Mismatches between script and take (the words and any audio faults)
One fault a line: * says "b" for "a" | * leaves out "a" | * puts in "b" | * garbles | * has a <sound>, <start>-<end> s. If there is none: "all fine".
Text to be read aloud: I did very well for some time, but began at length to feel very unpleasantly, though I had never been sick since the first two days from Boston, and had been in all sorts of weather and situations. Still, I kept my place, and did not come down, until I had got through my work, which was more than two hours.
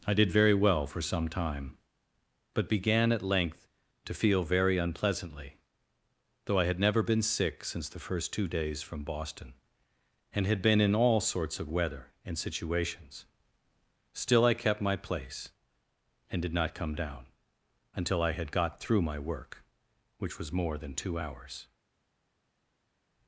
all fine